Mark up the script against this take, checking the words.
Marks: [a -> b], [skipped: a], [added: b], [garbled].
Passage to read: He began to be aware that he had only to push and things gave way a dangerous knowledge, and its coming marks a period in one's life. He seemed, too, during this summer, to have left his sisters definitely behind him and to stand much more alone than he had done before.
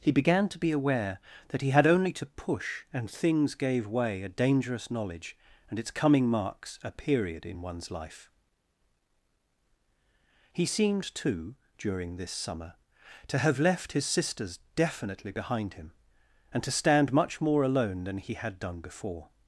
He began to be aware that he had only to push and things gave way a dangerous knowledge, and its coming marks a period in one's life. He seemed, too, during this summer, to have left his sisters definitely behind him and to stand much more alone than he had done before.